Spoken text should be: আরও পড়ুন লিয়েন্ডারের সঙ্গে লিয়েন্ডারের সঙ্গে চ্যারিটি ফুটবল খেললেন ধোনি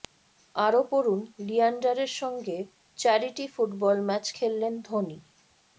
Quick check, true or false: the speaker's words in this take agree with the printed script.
false